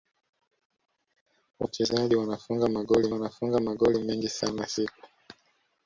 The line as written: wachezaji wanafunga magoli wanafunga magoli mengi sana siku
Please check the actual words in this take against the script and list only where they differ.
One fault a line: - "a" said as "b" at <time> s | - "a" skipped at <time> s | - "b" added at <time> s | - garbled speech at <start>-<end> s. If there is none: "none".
none